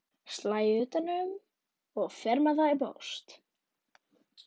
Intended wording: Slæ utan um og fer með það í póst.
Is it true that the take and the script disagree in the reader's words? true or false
false